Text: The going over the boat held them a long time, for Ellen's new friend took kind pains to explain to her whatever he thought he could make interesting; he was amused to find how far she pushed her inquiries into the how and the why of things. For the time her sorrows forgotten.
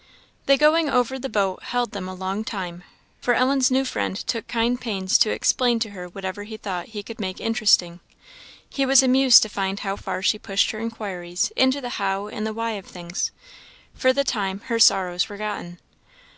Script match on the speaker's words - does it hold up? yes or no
yes